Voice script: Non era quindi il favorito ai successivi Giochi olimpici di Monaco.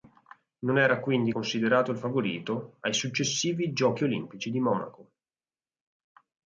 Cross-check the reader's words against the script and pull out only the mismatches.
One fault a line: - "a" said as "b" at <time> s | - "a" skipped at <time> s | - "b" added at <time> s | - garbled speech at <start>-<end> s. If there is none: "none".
- "considerato" added at 1.3 s